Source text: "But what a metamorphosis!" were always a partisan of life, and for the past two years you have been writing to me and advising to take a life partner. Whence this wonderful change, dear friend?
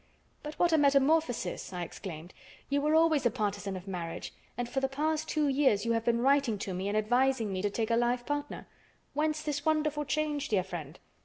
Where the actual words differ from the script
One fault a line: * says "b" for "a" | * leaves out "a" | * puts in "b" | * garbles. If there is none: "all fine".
* puts in "I exclaimed You"
* says "marriage" for "life"
* puts in "me"